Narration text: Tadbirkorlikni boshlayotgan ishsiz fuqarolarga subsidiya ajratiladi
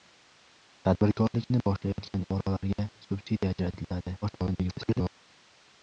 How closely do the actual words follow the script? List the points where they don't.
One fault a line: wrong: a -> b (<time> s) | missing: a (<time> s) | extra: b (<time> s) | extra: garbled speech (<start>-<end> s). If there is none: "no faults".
missing: ishsiz (2.2 s)
extra: garbled speech (4.2-5.1 s)